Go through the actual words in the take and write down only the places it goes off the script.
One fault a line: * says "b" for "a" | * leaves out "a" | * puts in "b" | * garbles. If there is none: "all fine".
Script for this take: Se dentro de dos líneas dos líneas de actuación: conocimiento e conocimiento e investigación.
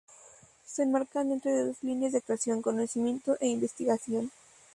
* puts in "enmarcan"
* leaves out "dos líneas"
* leaves out "conocimiento e"